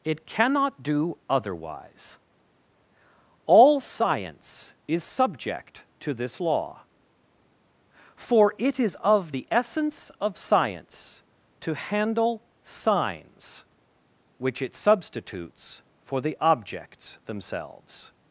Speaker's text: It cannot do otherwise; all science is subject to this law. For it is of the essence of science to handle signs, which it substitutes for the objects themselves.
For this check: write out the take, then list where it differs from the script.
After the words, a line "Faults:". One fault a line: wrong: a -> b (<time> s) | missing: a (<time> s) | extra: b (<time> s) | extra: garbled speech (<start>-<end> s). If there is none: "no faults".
It cannot do otherwise; all science is subject to this law. For it is of the essence of science to handle signs, which it substitutes for the objects themselves.
Faults:
no faults